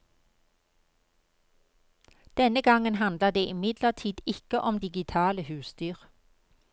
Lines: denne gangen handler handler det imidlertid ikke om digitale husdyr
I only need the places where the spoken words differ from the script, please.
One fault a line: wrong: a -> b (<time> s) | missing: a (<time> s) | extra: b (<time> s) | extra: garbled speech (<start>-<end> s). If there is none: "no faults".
missing: handler (3.3 s)